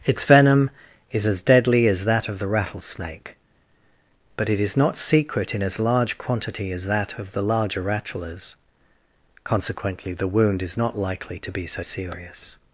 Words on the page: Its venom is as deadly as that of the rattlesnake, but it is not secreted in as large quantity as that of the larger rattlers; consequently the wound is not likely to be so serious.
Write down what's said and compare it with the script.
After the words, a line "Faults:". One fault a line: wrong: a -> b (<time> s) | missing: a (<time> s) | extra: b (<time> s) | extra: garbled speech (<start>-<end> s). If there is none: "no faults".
Its venom is as deadly as that of the rattlesnake, but it is not secret in as large quantity as that of the larger rattlers; consequently the wound is not likely to be so serious.
Faults:
wrong: secreted -> secret (5.0 s)